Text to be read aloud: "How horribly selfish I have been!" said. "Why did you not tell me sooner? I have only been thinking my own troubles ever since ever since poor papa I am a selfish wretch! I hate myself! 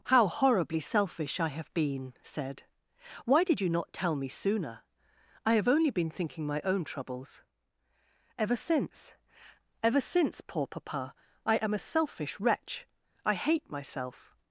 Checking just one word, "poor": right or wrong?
right